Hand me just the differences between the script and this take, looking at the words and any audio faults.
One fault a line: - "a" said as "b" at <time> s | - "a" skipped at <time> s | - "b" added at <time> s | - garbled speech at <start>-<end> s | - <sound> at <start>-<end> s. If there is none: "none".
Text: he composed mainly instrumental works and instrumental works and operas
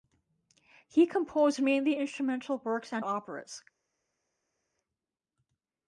- "instrumental works and" skipped at 3.1 s